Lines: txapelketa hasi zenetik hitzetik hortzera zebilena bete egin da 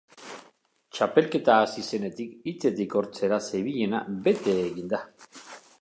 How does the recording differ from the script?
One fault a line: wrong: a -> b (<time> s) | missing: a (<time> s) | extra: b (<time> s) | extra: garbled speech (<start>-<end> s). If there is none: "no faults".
no faults